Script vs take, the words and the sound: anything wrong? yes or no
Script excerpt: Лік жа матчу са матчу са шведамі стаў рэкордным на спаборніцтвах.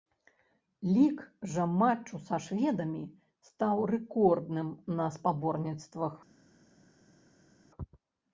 yes